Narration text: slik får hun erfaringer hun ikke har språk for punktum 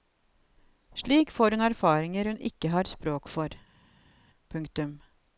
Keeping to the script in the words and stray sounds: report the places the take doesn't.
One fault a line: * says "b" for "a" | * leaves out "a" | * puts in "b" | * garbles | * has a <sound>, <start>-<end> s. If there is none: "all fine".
all fine